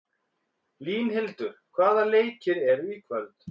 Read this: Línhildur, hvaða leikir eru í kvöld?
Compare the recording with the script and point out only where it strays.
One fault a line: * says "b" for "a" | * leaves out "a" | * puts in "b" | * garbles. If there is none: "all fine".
all fine